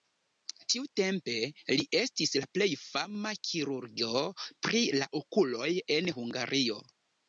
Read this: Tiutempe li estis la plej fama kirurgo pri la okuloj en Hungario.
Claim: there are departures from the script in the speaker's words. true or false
false